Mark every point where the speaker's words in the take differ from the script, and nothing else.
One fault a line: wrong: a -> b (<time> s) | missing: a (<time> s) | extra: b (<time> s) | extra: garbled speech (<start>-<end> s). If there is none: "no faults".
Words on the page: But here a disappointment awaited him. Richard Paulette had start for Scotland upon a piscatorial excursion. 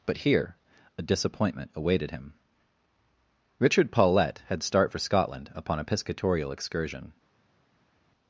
no faults